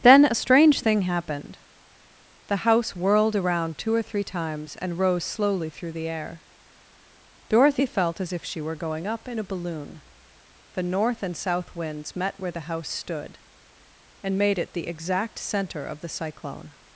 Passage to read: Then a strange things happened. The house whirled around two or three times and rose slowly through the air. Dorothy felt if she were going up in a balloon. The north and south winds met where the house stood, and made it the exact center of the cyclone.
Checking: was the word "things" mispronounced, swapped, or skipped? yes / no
yes